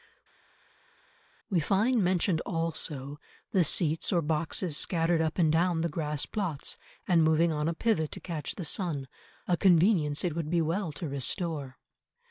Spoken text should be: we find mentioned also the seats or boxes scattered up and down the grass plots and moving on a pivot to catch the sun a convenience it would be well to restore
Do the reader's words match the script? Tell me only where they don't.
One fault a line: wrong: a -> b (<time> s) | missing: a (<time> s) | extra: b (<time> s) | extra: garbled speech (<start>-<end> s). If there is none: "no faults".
no faults